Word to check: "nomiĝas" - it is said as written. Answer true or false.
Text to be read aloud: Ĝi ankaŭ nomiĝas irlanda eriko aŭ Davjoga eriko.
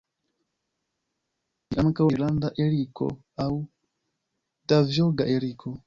false